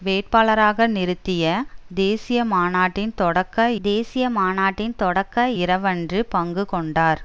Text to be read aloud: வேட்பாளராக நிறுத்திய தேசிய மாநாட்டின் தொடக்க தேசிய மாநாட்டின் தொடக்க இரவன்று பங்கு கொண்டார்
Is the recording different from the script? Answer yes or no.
no